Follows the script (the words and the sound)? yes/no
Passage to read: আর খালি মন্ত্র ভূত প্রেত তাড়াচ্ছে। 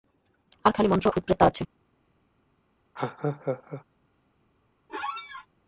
no